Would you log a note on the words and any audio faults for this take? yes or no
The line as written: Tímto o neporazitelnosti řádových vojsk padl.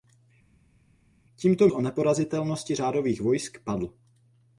no